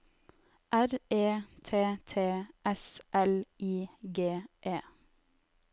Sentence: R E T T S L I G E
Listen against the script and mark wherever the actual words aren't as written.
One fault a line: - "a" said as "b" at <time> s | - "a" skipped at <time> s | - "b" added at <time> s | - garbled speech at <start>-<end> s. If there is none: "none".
none